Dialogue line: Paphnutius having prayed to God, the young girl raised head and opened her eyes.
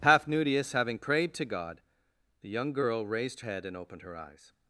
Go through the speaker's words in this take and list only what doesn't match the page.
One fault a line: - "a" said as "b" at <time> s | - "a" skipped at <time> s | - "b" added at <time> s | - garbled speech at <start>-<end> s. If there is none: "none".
none